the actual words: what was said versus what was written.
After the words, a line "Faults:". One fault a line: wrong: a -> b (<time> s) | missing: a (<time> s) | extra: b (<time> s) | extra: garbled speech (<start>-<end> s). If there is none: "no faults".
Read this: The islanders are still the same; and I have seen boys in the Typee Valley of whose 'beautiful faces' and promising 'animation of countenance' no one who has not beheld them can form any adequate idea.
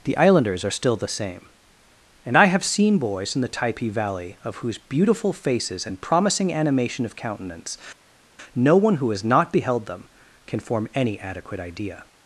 The islanders are still the same; and I have seen boys in the Typee Valley of whose 'beautiful faces' and promising 'animation of countenance' no one who has not beheld them can form any adequate idea.
Faults:
no faults